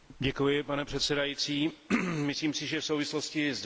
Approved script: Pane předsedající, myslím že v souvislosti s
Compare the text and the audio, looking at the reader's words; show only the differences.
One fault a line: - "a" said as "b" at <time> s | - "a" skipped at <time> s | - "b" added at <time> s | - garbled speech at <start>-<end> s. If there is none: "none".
- "si" added at 2.5 s